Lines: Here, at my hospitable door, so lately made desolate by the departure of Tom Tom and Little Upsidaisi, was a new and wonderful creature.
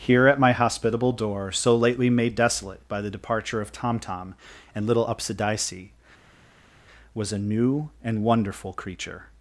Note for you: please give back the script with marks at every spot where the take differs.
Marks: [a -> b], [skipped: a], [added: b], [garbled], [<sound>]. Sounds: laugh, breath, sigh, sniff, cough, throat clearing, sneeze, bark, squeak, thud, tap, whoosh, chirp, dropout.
Here, at my hospitable door, so lately made desolate by the departure of Tom Tom and Little Upsidaisi, was a new and wonderful creature.